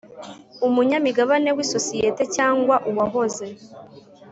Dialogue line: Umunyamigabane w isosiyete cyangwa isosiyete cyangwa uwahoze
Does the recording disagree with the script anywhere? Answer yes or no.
yes